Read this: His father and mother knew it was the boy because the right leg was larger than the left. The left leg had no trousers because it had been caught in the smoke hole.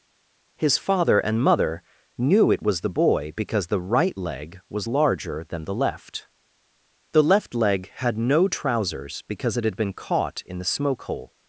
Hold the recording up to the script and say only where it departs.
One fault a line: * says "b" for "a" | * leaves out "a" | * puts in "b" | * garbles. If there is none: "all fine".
all fine